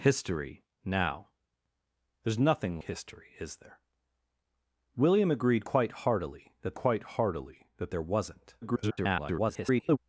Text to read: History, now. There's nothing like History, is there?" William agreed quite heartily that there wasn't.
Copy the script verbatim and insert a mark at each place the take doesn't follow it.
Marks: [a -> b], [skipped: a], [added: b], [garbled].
History, now. There's nothing [skipped: like] History, is there?" William agreed quite heartily that [added: quite heartily that] there wasn't. [garbled]